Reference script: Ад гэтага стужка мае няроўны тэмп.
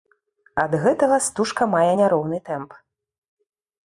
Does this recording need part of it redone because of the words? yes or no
no